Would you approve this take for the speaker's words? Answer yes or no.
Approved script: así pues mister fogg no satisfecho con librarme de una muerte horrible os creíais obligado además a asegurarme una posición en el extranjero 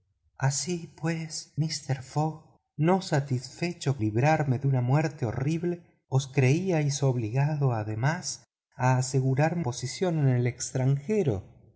no